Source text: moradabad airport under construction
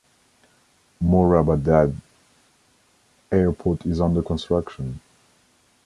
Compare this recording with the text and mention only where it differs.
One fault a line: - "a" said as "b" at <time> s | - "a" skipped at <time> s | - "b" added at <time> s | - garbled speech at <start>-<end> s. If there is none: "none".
- "is" added at 3.9 s